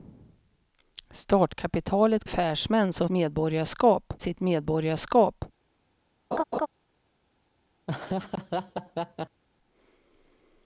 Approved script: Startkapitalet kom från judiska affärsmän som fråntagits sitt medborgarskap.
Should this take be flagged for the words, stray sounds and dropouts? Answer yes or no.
yes